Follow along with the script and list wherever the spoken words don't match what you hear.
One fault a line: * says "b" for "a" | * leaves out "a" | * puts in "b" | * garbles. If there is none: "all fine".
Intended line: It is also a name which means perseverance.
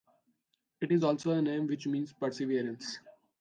all fine